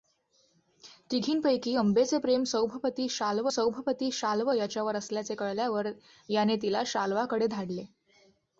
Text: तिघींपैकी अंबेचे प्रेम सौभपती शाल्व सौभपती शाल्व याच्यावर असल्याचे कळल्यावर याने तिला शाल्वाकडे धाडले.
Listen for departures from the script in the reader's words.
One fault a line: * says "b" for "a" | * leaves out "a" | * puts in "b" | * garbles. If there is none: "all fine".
all fine